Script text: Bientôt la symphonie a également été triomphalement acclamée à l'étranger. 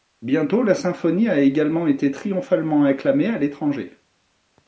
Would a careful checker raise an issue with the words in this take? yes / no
no